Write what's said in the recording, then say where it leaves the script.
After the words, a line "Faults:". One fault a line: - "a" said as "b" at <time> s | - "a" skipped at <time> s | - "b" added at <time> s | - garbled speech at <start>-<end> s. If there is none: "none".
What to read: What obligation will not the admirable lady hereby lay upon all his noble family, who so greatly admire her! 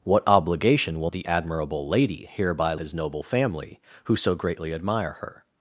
What obligation will the admirable lady hereby his noble family, who so greatly admire her!
Faults:
- "not" skipped at 1.1 s
- "lay upon all" skipped at 2.7 s